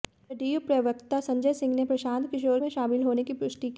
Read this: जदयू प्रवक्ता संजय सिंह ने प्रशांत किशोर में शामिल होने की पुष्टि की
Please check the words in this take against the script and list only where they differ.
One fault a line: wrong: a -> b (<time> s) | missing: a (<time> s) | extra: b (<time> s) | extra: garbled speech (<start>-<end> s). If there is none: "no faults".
no faults